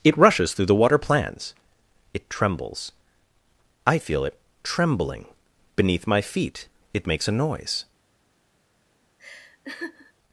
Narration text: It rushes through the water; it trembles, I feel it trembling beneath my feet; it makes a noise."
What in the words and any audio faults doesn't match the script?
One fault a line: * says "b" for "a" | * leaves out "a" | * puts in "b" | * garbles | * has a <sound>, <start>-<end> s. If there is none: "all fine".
* puts in "plans"
* has a laugh, 9.2-10.1 s